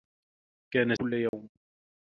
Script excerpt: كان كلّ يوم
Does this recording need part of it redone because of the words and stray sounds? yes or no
yes